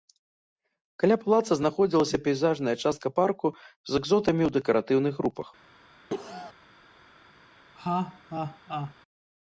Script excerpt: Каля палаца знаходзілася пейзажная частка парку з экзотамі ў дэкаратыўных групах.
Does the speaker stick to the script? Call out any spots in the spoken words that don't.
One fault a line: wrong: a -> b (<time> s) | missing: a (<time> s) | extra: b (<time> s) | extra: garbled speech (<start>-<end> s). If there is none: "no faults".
no faults